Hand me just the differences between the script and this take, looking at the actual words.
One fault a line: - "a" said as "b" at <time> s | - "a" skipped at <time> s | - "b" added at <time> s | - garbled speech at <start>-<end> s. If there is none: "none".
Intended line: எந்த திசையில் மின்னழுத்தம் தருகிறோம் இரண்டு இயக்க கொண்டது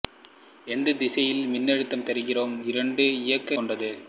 none